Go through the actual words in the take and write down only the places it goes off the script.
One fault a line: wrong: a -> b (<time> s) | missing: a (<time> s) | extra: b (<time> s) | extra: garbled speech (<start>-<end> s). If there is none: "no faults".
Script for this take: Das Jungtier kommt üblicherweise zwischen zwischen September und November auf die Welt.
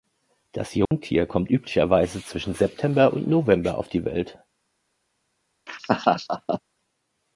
missing: zwischen (2.5 s)